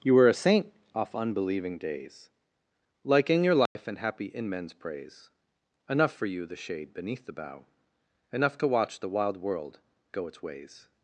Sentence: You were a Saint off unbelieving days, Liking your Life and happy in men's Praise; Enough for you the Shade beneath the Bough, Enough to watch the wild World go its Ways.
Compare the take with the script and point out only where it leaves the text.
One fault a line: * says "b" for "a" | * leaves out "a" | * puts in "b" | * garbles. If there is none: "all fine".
all fine